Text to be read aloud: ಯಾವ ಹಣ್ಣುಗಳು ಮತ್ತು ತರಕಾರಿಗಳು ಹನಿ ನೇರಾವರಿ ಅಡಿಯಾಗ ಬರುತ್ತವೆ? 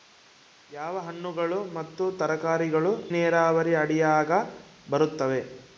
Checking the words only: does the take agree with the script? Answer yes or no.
no